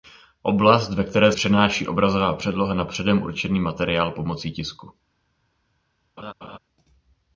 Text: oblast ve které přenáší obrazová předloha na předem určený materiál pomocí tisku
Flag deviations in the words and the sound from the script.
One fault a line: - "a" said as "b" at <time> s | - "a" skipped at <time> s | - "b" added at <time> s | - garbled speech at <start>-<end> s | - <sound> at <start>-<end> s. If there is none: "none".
- laugh at 6.2-6.6 s